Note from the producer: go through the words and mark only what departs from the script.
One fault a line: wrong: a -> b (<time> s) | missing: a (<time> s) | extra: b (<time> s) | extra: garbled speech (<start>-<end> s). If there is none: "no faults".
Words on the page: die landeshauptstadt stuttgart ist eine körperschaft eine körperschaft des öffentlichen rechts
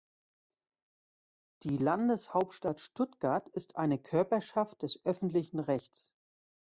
missing: eine körperschaft (4.8 s)